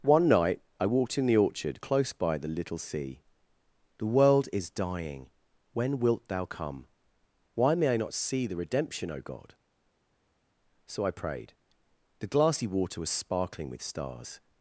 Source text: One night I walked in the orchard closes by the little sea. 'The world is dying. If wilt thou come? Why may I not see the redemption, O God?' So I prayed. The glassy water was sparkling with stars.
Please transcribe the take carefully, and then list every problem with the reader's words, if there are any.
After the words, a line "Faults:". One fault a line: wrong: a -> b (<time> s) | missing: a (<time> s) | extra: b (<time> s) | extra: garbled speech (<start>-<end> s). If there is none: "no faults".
One night I walked in the orchard close by the little sea. 'The world is dying. When wilt thou come? Why may I not see the redemption, O God?' So I prayed. The glassy water was sparkling with stars.
Faults:
wrong: closes -> close (1.8 s)
wrong: If -> When (5.7 s)